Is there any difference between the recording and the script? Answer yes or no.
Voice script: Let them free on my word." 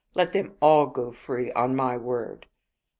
yes